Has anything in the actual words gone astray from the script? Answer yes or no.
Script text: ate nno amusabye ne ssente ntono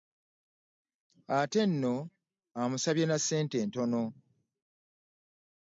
yes